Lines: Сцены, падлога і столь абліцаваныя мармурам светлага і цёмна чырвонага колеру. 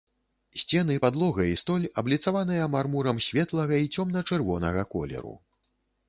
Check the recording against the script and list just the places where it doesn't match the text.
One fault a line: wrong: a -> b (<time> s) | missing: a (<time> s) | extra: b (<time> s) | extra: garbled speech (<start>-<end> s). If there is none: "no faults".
no faults